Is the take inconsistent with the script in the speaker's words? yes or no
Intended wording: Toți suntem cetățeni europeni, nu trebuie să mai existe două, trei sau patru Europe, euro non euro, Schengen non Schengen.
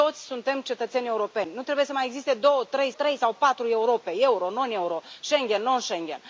yes